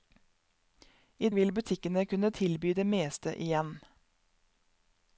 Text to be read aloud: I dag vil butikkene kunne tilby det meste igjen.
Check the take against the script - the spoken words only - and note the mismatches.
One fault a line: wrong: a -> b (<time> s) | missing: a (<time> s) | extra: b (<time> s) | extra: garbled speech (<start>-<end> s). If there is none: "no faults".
missing: dag (1.3 s)